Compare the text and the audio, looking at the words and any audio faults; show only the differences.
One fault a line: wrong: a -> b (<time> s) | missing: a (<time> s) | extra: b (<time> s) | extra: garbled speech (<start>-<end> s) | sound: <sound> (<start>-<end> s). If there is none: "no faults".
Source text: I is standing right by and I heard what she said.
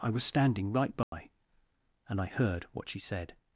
wrong: is -> was (0.1 s)
sound: dropout (1.0-1.1 s)